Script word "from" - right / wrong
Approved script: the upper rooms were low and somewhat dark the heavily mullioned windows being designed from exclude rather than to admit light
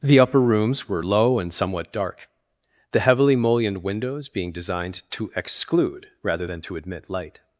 wrong